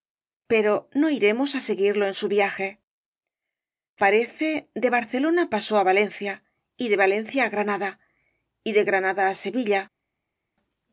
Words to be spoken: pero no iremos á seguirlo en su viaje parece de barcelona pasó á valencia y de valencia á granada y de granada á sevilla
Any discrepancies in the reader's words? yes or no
no